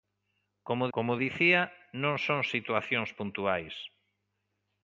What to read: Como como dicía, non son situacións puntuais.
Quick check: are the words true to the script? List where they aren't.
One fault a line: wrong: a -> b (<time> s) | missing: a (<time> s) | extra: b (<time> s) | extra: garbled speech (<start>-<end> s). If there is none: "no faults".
no faults